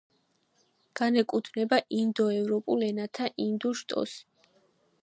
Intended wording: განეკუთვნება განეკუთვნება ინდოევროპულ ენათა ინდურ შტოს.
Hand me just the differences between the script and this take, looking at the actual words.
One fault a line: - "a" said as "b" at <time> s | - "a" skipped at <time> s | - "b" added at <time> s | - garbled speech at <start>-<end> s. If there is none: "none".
- "განეკუთვნება" skipped at 1.8 s